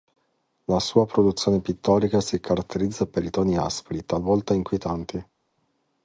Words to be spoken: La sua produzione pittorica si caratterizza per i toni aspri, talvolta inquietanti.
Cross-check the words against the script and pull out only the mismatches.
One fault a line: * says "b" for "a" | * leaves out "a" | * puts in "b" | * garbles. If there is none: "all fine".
all fine